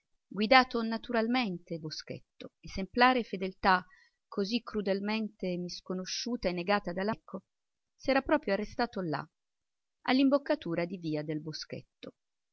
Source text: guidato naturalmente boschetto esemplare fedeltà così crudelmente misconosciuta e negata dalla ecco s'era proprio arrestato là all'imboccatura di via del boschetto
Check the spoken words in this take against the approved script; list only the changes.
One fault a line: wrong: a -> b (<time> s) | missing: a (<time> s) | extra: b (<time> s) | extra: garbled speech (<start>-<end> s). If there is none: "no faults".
no faults